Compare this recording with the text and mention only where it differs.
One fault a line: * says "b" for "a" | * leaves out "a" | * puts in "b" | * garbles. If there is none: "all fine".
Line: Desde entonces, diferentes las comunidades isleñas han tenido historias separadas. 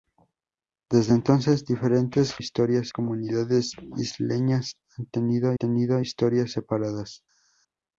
* says "historias" for "las"
* puts in "tenido"